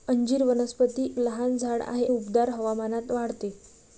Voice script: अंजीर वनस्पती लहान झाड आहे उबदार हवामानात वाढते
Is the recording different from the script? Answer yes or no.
no